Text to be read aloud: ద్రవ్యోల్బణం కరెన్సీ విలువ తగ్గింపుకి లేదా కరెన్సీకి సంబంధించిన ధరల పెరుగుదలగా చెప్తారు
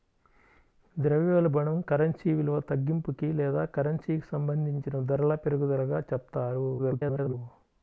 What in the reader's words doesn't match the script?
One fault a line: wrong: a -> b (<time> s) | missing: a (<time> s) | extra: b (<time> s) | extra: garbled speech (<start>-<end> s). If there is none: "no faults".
extra: garbled speech (6.8-7.3 s)